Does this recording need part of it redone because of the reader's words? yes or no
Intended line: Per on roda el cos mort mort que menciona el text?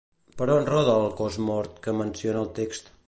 yes